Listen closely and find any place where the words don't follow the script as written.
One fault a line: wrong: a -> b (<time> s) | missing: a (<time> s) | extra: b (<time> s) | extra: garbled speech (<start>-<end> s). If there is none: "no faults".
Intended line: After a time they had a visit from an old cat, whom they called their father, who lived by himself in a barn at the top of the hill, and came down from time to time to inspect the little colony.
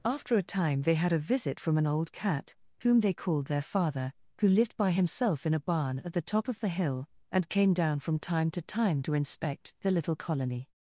no faults